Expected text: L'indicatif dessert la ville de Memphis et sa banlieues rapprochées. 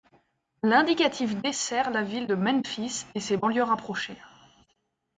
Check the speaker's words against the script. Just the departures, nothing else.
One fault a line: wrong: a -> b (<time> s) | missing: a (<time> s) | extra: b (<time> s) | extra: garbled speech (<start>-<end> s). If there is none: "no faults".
wrong: sa -> ses (3.2 s)